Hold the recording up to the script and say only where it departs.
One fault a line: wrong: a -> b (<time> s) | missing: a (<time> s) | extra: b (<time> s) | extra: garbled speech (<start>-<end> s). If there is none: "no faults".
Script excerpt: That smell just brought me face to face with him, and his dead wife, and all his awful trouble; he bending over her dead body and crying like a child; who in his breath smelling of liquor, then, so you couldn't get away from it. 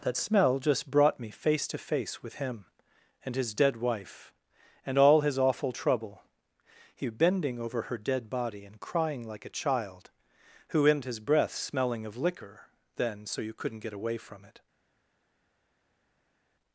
no faults